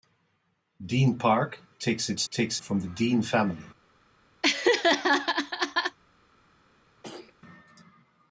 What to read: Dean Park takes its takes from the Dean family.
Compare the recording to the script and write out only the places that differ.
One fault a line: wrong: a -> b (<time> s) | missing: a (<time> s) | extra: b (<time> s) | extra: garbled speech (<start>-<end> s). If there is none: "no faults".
no faults